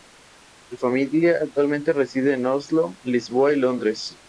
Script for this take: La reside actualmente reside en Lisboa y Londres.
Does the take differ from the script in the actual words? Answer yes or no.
yes